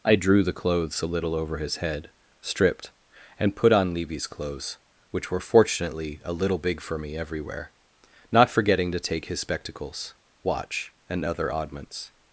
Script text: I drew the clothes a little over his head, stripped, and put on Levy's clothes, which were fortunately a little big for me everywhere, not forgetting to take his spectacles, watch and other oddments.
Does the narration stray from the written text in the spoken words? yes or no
no